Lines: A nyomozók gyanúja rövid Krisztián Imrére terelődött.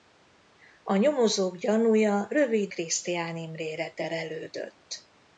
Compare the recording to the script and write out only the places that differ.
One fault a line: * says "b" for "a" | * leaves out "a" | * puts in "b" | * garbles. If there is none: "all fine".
all fine